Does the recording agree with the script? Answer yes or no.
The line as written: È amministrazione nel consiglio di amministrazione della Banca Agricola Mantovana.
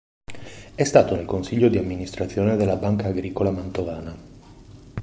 no